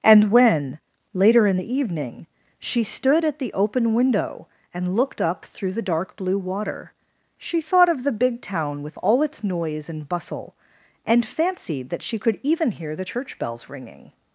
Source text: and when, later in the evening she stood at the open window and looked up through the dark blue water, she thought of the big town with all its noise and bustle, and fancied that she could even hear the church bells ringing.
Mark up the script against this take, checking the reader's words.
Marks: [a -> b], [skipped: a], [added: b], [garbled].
and when, later in the evening she stood at the open window and looked up through the dark blue water, she thought of the big town with all its noise and bustle, and fancied that she could even hear the church bells ringing.